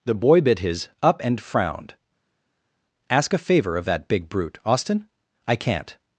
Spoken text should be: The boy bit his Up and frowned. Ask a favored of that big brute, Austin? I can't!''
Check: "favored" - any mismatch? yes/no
yes